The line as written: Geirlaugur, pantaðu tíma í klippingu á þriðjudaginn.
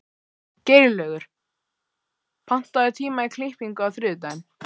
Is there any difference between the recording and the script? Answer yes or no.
no